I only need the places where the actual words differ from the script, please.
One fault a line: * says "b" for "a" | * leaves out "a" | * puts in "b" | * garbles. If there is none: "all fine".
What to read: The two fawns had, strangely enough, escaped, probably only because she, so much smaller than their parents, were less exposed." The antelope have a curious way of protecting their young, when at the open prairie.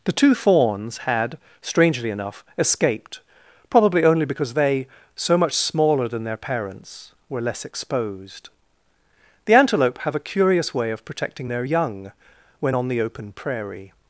* says "they" for "she"
* says "on" for "at"